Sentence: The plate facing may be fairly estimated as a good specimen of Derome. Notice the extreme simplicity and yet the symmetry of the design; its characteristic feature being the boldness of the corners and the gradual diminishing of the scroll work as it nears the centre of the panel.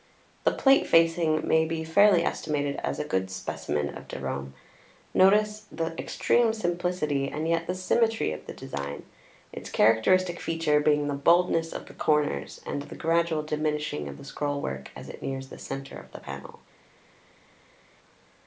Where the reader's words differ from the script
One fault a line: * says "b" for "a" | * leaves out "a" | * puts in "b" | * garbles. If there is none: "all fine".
all fine